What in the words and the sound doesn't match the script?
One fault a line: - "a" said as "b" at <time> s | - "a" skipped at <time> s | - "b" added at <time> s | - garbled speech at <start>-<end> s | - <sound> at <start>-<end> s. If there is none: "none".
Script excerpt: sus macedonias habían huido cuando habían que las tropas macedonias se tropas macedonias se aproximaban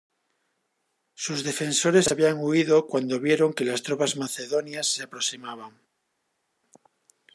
- "macedonias" said as "defensores" at 1.4 s
- "habían" said as "vieron" at 3.2 s
- "tropas macedonias se" skipped at 5.0 s